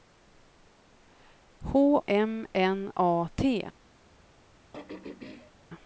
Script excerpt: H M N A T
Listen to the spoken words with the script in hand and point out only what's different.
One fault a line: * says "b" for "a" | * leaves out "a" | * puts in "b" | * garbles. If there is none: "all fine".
all fine